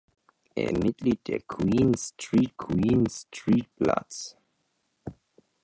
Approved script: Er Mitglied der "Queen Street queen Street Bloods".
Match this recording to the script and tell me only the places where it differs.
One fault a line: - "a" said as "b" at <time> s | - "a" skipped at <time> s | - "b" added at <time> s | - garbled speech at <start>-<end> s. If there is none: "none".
none